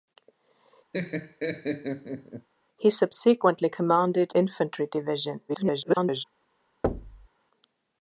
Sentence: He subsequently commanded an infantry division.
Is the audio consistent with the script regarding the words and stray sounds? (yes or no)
no